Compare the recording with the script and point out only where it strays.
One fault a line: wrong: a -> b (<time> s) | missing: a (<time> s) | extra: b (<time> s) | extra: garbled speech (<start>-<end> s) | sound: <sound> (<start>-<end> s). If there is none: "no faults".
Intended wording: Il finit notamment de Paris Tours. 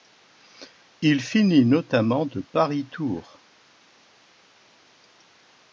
no faults